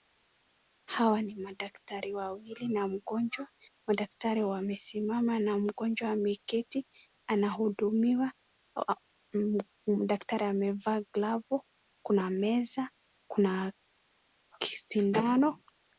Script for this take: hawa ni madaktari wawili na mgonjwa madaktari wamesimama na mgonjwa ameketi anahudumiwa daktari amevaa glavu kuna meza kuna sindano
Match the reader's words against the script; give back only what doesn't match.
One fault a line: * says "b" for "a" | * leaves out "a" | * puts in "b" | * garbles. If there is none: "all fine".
all fine